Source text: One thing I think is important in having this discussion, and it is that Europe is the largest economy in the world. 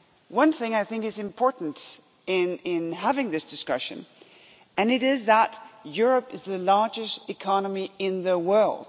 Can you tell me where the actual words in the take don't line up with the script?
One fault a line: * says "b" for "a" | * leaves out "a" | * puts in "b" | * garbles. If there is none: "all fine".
all fine